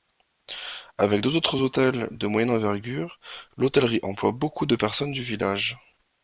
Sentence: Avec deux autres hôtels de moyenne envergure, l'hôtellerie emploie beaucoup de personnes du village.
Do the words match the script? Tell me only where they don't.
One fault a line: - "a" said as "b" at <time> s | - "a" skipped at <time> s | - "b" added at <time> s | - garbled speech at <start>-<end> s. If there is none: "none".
none